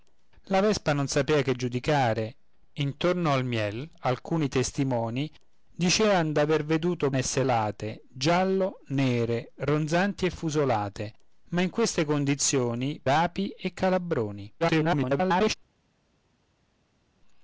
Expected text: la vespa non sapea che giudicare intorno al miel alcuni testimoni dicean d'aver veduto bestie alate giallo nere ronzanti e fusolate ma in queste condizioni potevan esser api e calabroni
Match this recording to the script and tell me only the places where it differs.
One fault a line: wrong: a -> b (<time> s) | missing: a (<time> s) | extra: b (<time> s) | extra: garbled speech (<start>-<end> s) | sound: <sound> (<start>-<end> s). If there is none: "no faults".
wrong: bestie -> esser (7.1 s)
missing: potevan esser (13.0 s)
extra: garbled speech (14.6-15.5 s)